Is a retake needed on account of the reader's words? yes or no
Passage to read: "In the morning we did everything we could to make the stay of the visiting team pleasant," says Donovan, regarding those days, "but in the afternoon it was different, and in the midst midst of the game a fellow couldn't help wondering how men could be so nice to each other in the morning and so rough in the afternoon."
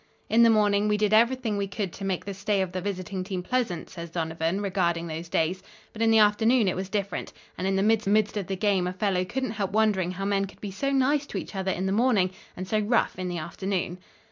no